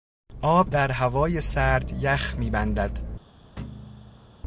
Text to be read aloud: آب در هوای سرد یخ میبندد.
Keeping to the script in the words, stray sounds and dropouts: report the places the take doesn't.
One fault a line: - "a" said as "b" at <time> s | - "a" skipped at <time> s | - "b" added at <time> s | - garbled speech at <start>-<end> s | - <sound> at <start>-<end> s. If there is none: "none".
- thud at 3.6-4.4 s